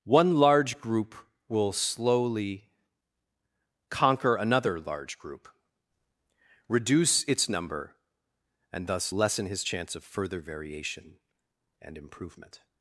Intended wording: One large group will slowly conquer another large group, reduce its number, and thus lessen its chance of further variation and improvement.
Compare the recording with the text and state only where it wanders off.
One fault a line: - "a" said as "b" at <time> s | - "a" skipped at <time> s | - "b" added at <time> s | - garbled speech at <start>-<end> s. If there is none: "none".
- "its" said as "his" at 9.5 s